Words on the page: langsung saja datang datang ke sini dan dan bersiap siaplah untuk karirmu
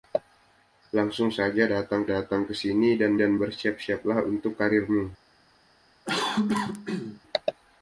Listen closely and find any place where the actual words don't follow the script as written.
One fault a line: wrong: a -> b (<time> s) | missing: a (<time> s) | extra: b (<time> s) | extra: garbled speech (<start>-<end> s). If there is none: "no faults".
no faults